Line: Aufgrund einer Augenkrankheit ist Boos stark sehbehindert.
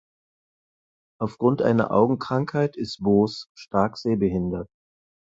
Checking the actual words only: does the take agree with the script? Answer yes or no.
yes